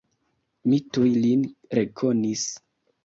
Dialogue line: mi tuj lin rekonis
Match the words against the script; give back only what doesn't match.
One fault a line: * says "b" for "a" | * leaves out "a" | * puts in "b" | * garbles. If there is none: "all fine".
all fine